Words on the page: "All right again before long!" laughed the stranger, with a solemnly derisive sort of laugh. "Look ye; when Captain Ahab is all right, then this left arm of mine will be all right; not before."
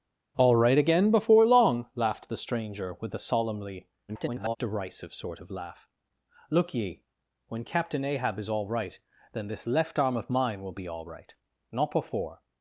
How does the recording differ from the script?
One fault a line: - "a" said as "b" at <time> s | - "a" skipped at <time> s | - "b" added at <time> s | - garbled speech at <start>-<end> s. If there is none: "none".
- garbled speech at 4.1-4.6 s